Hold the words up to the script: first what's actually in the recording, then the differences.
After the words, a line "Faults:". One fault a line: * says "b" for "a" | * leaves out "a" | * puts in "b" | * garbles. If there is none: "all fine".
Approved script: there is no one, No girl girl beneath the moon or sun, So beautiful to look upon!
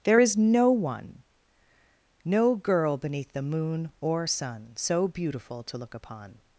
there is no one, No girl beneath the moon or sun, So beautiful to look upon!
Faults:
* leaves out "girl"